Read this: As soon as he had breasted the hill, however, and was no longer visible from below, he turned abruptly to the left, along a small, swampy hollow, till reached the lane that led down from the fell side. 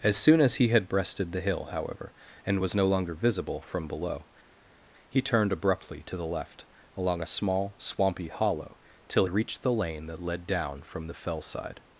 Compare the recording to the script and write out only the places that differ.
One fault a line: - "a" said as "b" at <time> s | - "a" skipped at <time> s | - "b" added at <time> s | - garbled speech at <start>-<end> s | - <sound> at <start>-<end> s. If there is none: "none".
none